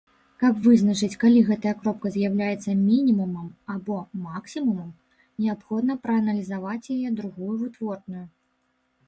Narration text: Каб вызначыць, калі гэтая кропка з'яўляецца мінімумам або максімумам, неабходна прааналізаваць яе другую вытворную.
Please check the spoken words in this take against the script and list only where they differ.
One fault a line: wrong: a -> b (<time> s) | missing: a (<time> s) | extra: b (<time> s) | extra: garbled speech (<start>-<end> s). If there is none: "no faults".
no faults